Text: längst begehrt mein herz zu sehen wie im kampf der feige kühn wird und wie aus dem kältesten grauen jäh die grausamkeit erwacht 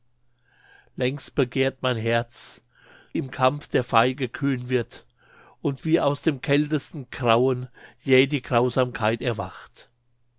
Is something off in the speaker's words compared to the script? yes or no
yes